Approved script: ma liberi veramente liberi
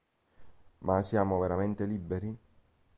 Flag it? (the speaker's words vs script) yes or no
yes